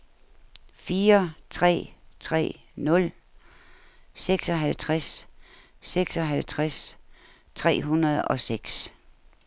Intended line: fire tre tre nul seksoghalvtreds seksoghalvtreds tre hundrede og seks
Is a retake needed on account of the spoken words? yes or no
no